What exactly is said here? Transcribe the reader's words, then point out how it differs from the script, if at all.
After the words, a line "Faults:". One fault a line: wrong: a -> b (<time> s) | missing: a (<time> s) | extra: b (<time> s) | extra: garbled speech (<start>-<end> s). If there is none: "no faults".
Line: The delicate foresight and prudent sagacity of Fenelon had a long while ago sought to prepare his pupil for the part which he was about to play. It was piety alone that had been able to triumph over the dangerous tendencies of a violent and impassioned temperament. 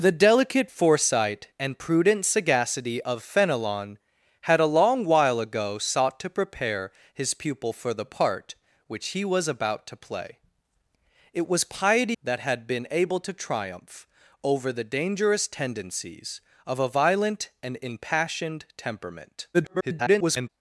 The delicate foresight and prudent sagacity of Fenelon had a long while ago sought to prepare his pupil for the part which he was about to play. It was piety that had been able to triumph over the dangerous tendencies of a violent and impassioned temperament. [garbled]
Faults:
missing: alone (12.2 s)
extra: garbled speech (19.5-20.5 s)